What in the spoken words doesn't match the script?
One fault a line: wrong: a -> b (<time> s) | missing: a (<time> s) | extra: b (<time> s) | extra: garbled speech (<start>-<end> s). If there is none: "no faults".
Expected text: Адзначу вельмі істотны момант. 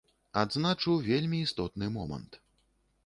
no faults